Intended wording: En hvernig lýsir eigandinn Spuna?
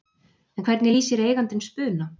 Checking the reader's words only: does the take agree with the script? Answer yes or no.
yes